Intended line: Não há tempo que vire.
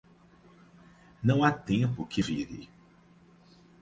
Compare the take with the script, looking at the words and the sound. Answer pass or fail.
pass